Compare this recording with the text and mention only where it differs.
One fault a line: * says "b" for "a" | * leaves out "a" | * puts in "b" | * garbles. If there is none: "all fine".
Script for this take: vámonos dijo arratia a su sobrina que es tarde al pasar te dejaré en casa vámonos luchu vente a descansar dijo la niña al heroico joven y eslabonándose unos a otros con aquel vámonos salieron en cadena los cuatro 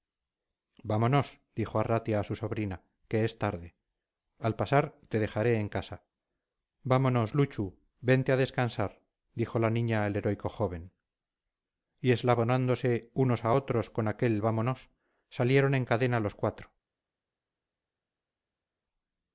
all fine